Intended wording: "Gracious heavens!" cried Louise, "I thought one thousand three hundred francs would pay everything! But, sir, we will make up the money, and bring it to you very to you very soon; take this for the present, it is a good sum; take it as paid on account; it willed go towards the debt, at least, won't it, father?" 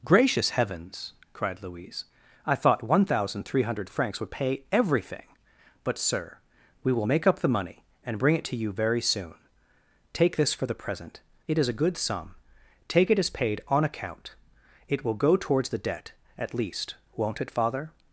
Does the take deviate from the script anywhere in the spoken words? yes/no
yes